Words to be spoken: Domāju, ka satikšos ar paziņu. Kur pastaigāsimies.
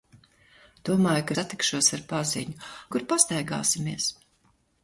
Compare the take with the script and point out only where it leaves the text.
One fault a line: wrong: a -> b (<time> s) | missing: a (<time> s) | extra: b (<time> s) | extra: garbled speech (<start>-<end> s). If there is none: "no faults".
no faults